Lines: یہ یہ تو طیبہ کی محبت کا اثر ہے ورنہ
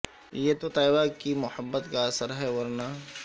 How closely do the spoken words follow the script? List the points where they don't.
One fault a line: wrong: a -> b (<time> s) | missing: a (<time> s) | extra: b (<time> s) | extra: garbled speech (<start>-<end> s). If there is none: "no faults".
missing: یہ (0.5 s)